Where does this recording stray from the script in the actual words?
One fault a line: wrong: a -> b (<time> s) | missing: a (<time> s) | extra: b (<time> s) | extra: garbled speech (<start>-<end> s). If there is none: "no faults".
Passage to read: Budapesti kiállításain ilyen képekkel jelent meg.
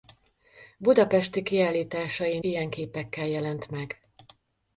no faults